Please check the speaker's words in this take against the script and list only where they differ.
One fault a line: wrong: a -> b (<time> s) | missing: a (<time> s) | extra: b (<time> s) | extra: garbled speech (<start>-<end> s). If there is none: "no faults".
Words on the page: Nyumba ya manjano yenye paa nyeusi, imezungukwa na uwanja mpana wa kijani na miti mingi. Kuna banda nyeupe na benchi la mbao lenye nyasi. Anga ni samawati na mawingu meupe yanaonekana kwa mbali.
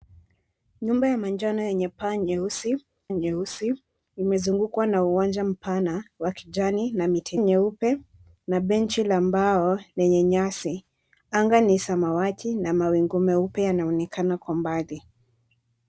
extra: nyeusi (3.1 s)
missing: mingi Kuna banda (7.4 s)